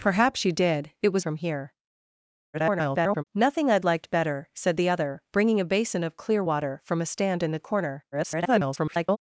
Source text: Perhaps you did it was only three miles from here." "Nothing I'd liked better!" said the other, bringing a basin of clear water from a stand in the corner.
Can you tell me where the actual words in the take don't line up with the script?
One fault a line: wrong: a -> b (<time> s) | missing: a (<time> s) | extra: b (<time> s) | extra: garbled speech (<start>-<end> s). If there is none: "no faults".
missing: only three miles (1.2 s)
extra: garbled speech (2.5-3.2 s)
extra: garbled speech (8.1-9.2 s)